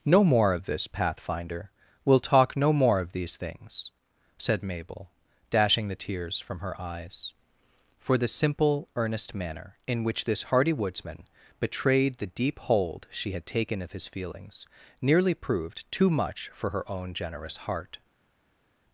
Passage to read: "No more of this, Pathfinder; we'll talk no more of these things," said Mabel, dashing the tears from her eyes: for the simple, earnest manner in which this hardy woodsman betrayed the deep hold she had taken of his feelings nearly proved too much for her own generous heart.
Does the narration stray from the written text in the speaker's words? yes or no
no